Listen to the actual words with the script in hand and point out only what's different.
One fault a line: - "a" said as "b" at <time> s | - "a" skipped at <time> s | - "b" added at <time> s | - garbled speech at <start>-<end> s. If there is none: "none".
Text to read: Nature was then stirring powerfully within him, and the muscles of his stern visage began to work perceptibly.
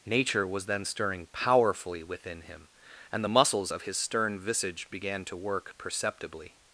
none